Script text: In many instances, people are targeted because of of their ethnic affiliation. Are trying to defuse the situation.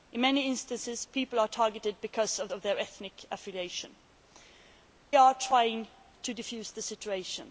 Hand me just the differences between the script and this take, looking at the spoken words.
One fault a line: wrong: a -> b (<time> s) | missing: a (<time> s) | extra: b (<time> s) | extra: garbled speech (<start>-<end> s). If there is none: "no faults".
no faults